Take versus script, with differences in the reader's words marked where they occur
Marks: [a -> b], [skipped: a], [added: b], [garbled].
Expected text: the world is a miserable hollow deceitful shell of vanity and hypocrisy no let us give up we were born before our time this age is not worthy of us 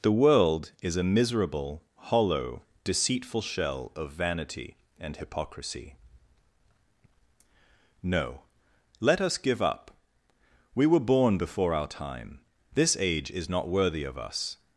the world is a miserable hollow deceitful shell of vanity and hypocrisy no let us give up we were born before our time this age is not worthy of us